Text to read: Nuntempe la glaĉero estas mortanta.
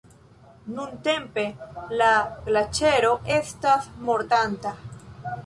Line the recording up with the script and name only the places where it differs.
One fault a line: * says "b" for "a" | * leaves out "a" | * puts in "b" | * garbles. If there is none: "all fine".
all fine